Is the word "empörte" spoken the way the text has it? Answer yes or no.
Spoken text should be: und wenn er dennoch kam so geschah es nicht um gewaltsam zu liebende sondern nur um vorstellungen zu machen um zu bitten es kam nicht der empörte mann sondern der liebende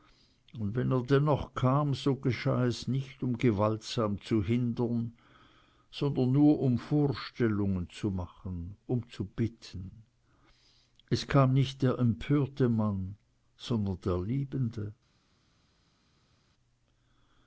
yes